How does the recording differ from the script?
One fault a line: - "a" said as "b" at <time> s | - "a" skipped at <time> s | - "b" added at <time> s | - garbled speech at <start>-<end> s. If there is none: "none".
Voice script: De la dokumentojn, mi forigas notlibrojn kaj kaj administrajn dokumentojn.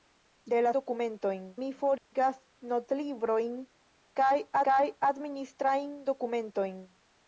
none